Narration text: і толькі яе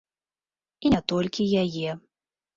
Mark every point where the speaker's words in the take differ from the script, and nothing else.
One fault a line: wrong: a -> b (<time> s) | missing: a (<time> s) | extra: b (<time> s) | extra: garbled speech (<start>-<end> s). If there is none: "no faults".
extra: не (0.9 s)